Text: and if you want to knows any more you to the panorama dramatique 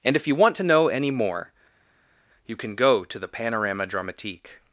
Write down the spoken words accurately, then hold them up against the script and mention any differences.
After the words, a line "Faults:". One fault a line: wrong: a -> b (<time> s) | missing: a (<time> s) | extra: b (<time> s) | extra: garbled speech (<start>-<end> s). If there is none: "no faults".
and if you want to know any more you can go to the panorama dramatique
Faults:
wrong: knows -> know (0.6 s)
extra: can go (2.6 s)